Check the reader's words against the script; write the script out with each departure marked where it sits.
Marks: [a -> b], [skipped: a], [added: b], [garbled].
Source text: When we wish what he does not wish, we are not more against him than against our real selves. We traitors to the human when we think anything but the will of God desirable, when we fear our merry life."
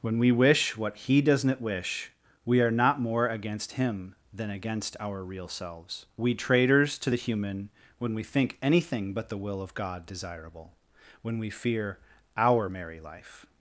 When we wish what he does not wish, we are not more against him than against our real selves. We traitors to the human when we think anything but the will of God desirable, when we fear our merry life."